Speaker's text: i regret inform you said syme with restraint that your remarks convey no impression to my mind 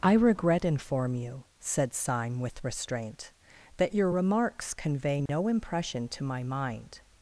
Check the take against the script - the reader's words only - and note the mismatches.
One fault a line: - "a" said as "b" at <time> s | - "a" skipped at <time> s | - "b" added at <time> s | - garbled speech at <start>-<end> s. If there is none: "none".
none